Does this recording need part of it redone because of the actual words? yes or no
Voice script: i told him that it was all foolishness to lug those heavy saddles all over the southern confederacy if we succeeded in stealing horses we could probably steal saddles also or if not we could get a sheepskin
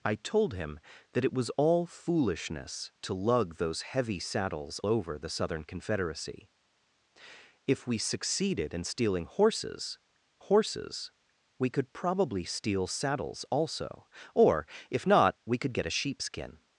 yes